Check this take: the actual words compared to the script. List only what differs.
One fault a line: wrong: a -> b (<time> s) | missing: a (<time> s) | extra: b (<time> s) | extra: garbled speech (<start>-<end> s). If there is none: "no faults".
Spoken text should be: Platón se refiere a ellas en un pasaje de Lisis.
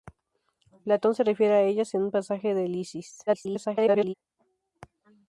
extra: garbled speech (3.3-4.1 s)